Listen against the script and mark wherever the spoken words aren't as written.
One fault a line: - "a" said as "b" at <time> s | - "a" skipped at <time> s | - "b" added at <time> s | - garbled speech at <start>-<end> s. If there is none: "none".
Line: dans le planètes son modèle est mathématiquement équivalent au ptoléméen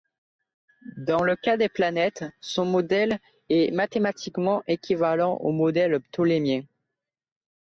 - "cas des" added at 1.4 s
- "modèle" added at 5.5 s